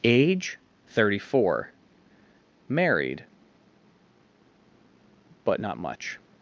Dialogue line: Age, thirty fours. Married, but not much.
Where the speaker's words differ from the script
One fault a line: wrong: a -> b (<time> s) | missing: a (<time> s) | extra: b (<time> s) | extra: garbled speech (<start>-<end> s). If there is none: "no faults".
wrong: fours -> four (1.2 s)